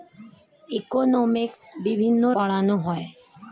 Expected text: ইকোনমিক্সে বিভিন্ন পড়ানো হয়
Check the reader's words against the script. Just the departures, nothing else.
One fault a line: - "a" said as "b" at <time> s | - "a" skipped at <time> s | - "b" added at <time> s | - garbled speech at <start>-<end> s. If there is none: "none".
none